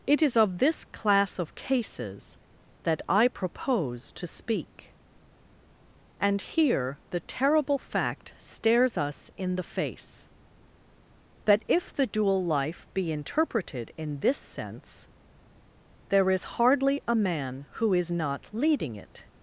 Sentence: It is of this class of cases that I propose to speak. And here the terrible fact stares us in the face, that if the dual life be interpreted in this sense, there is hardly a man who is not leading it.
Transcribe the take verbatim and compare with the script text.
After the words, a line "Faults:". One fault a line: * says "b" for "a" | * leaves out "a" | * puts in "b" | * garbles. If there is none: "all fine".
It is of this class of cases that I propose to speak. And here the terrible fact stares us in the face, that if the dual life be interpreted in this sense, there is hardly a man who is not leading it.
Faults:
all fine